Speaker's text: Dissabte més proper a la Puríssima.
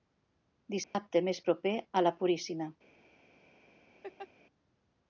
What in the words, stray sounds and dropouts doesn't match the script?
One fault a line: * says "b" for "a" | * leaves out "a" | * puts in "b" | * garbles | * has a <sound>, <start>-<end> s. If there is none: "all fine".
* has a dropout, 0.8-0.9 s
* has a laugh, 4.0-4.3 s